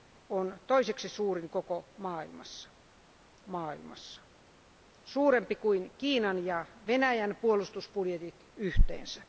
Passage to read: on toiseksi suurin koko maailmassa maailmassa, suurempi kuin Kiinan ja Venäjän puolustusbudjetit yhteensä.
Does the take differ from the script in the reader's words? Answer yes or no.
no